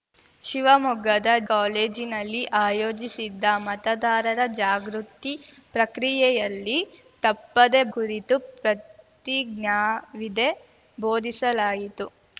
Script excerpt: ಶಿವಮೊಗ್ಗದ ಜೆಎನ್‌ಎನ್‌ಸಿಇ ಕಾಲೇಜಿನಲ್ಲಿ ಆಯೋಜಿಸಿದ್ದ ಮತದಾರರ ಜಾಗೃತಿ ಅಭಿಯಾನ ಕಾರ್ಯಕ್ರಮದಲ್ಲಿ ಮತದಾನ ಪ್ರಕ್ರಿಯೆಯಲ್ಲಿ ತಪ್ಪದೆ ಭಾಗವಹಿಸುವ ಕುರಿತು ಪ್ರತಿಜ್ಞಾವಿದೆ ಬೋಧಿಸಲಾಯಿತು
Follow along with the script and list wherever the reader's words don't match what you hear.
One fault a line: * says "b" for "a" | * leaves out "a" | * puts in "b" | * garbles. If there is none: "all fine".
* leaves out "ಜೆಎನ್‌ಎನ್‌ಸಿಇ"
* leaves out "ಅಭಿಯಾನ ಕಾರ್ಯಕ್ರಮದಲ್ಲಿ ಮತದಾನ"
* leaves out "ಭಾಗವಹಿಸುವ"